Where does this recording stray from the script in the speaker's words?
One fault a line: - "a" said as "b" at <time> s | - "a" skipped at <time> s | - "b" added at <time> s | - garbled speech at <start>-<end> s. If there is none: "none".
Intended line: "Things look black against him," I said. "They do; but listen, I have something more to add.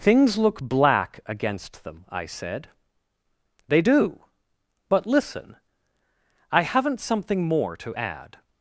- "him" said as "them" at 1.8 s
- "have" said as "haven't" at 6.6 s